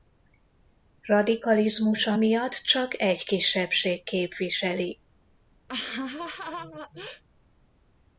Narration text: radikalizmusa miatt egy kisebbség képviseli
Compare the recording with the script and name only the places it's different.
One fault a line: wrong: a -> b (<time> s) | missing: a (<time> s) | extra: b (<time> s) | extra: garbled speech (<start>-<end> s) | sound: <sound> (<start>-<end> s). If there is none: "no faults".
extra: csak (2.5 s)
sound: laugh (5.7-7.2 s)